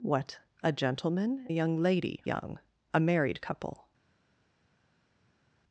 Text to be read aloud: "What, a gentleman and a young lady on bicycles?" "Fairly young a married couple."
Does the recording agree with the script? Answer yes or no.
no